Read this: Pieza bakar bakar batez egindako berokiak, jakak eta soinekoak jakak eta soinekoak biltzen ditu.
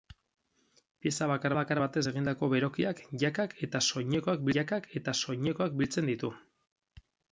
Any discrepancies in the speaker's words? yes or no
no